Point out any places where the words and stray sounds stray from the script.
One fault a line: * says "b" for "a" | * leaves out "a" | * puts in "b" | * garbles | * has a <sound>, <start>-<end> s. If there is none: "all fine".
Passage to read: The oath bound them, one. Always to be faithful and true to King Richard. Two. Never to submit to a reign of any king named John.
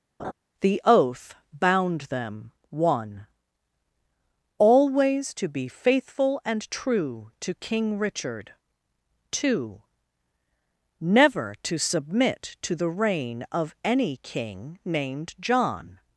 * has a laugh, 0.2-0.3 s
* says "the" for "a"